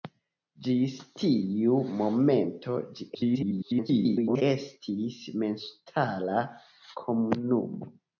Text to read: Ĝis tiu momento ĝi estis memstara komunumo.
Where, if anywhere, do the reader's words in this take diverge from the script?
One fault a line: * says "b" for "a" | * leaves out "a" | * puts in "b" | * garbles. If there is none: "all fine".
* garbles